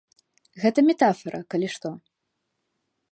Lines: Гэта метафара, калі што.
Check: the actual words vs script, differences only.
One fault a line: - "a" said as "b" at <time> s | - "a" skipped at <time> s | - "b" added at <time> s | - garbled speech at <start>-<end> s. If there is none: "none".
none